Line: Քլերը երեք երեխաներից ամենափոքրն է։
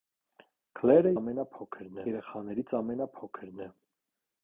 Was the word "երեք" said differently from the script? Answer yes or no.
yes